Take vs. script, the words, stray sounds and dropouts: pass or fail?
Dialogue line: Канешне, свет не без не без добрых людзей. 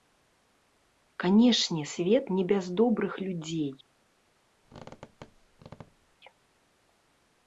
fail